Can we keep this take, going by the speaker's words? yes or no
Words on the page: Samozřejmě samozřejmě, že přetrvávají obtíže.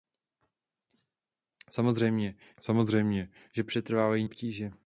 yes